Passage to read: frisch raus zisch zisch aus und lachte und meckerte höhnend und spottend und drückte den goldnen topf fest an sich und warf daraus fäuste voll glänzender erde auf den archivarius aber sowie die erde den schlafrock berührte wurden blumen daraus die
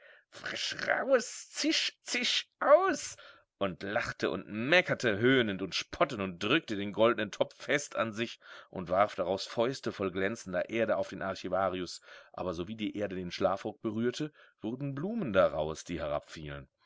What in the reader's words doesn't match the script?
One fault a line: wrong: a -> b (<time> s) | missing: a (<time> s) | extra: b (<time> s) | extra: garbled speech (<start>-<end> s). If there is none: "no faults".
no faults